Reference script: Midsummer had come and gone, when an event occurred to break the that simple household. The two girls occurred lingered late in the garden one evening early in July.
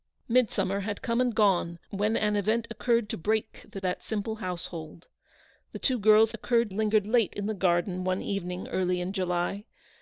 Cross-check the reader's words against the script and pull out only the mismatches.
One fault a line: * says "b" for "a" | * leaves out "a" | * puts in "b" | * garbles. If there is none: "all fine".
all fine